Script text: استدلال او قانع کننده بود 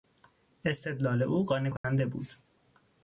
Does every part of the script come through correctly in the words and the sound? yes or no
no